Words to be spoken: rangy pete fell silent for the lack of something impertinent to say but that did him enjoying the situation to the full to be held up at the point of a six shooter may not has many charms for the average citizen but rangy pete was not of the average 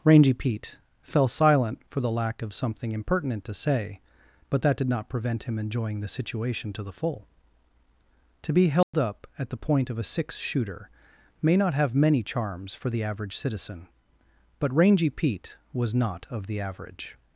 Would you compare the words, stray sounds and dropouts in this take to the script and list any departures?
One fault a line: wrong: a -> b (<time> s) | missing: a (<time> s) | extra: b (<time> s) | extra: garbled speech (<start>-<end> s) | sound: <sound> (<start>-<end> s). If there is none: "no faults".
extra: not prevent (4.9 s)
sound: dropout (8.8-8.9 s)
wrong: has -> have (11.8 s)